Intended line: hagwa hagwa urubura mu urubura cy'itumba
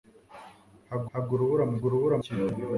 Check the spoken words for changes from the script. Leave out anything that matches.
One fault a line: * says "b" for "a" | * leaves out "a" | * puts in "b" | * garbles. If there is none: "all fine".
all fine